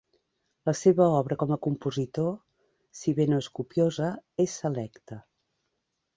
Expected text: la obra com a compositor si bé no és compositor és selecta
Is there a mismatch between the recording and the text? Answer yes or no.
yes